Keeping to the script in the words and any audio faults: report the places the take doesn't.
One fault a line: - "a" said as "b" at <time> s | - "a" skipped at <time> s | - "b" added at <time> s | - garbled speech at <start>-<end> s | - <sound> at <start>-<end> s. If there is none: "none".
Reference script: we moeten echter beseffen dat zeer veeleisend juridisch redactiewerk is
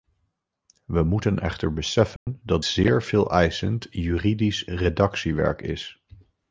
- dropout at 2.2-2.3 s